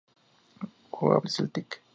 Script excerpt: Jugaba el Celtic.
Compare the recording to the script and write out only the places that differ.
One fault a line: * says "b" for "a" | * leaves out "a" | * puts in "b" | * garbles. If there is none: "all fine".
all fine